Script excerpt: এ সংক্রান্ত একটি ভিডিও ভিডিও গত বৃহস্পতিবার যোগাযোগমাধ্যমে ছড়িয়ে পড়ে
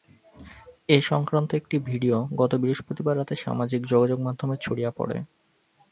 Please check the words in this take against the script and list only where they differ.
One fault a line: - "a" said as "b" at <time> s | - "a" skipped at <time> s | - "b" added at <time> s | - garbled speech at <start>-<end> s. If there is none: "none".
- "ভিডিও" skipped at 2.2 s
- "রাতে সামাজিক" added at 3.2 s